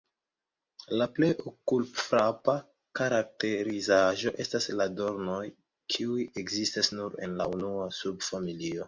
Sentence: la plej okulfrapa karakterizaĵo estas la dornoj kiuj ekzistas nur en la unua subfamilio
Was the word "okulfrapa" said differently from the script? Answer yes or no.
no